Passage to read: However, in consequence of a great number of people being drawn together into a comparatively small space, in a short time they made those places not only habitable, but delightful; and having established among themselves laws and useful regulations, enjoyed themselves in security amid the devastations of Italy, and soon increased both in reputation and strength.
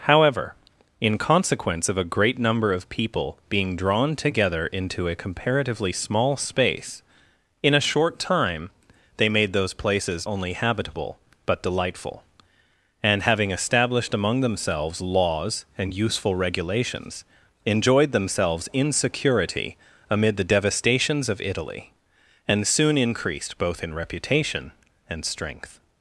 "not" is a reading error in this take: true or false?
true